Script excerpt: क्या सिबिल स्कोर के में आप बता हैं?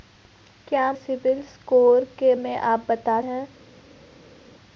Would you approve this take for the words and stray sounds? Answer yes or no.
yes